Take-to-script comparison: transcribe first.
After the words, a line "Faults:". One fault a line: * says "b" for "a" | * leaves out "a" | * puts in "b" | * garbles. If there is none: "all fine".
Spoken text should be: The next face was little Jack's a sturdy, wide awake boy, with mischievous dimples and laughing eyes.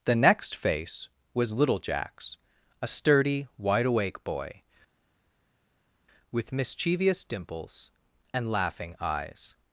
The next face was little Jack's a sturdy, wide awake boy, with mischievous dimples and laughing eyes.
Faults:
all fine